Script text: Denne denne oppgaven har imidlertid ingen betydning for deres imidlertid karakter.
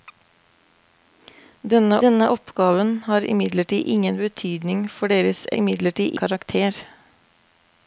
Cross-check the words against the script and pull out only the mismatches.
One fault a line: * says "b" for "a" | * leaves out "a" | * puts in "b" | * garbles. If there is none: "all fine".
all fine